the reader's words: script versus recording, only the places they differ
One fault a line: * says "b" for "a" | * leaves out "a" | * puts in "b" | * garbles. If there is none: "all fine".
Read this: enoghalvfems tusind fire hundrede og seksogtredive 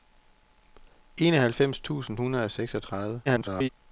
* leaves out "fire"
* garbles